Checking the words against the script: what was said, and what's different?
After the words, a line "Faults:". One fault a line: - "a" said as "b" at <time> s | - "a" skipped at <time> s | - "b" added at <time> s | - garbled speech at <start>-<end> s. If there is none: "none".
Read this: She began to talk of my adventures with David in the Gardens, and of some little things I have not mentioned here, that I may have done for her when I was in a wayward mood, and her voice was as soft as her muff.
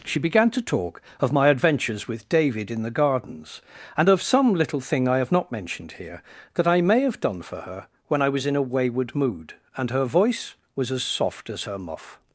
She began to talk of my adventures with David in the Gardens, and of some little thing I have not mentioned here, that I may have done for her when I was in a wayward mood, and her voice was as soft as her muff.
Faults:
- "things" said as "thing" at 4.8 s